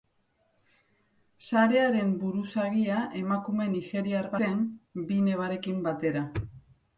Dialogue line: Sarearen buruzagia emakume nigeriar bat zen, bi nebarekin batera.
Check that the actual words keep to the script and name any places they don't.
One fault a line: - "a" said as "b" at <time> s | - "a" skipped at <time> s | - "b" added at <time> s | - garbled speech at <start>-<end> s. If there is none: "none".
- "bat" skipped at 4.3 s